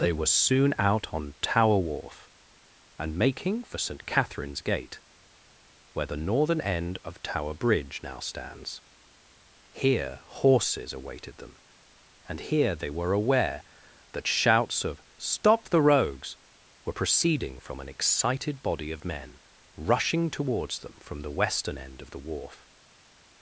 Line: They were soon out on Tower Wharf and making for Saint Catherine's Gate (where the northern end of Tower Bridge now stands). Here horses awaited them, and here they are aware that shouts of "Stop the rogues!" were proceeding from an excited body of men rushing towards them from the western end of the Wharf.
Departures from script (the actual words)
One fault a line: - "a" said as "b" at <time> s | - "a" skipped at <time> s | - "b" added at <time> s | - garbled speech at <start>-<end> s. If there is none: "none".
- "are" said as "were" at 12.9 s